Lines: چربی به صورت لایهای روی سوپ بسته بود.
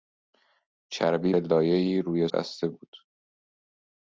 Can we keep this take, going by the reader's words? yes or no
no